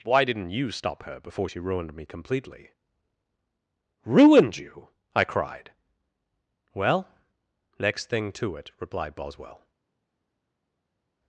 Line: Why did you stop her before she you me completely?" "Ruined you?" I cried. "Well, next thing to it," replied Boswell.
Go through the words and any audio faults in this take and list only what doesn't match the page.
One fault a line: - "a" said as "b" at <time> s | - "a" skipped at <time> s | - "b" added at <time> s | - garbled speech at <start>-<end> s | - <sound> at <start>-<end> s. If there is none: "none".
- "did" said as "didn't" at 0.2 s
- "you" said as "ruined" at 1.6 s